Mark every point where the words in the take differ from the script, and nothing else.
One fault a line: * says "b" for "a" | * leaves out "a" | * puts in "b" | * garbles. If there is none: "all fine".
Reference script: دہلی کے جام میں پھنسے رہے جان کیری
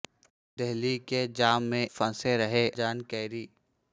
all fine